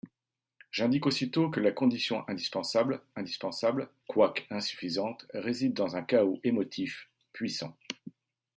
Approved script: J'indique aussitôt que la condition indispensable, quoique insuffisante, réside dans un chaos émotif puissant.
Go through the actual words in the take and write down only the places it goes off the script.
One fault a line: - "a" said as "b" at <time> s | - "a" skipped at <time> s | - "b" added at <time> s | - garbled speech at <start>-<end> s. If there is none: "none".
- "indispensable" added at 3.2 s